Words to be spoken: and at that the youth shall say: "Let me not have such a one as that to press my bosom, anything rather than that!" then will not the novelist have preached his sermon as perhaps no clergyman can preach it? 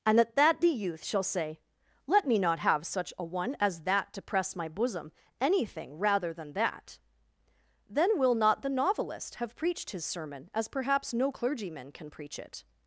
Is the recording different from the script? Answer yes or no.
no